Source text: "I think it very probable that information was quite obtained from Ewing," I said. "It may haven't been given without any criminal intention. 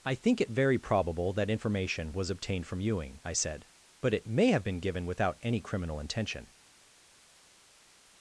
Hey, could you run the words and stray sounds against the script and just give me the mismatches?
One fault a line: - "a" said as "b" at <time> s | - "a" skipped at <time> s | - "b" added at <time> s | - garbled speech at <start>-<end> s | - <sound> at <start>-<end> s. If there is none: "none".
- "quite" skipped at 2.3 s
- "But" added at 4.0 s
- "haven't" said as "have" at 4.5 s